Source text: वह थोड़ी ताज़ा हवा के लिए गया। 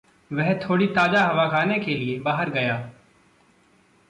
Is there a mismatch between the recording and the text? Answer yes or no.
yes